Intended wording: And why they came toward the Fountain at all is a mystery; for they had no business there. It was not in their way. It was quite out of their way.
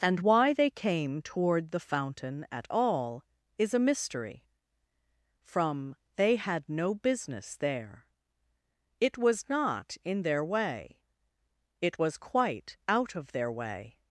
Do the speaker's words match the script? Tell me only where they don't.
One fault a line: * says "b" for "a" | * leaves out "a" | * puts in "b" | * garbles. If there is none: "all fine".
* says "from" for "for"